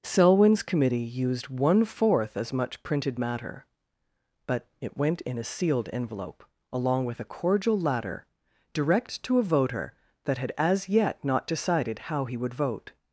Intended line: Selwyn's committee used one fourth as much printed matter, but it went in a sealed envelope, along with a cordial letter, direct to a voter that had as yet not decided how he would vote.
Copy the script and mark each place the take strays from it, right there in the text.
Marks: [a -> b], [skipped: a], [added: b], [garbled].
Selwyn's committee used one fourth as much printed matter, but it went in a sealed envelope, along with a cordial [letter, -> ladder] direct to a voter that had as yet not decided how he would vote.